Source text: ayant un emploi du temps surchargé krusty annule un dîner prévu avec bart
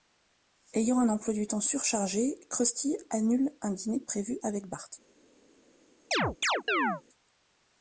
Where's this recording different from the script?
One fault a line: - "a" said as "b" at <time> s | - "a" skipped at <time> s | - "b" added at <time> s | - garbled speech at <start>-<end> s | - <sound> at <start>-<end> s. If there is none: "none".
- chirp at 6.1-7.0 s